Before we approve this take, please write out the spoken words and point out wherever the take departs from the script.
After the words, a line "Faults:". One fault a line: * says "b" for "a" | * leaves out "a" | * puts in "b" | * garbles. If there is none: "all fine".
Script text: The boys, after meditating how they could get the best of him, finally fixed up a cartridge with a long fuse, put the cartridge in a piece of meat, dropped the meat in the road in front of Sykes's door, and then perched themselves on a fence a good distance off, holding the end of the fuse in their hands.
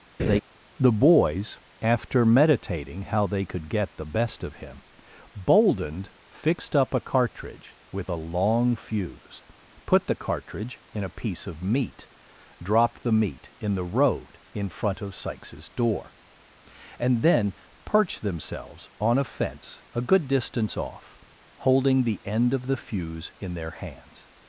The boys, after meditating how they could get the best of him, boldened fixed up a cartridge with a long fuse, put the cartridge in a piece of meat, dropped the meat in the road in front of Sykes's door, and then perched themselves on a fence a good distance off, holding the end of the fuse in their hands.
Faults:
* says "boldened" for "finally"